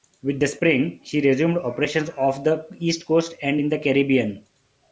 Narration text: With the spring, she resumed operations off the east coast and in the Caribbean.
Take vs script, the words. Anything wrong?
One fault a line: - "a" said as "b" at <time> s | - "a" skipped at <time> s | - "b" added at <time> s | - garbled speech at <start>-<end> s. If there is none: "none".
none